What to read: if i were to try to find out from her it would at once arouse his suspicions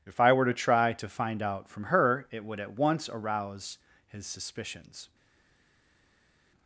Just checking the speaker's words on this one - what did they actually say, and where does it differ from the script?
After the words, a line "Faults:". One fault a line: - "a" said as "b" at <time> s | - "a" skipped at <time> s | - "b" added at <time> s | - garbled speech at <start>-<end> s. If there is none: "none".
if i were to try to find out from her it would at once arouse his suspicions
Faults:
none